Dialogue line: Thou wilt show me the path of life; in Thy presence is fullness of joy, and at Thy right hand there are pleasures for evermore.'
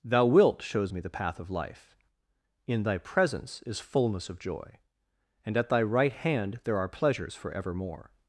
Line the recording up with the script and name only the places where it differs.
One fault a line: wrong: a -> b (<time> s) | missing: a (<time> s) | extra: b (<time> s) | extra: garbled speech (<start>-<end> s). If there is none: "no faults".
wrong: show -> shows (0.6 s)